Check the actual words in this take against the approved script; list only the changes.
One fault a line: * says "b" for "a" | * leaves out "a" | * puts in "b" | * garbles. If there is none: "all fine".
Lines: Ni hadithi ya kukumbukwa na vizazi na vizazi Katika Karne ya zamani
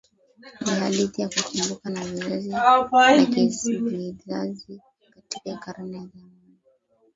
all fine